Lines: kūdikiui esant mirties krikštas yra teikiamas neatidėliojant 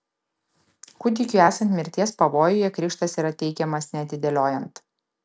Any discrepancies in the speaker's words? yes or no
yes